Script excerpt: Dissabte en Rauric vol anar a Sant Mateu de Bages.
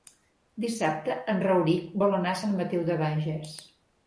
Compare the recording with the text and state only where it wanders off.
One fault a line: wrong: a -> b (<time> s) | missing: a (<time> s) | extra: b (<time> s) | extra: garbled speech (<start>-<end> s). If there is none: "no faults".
no faults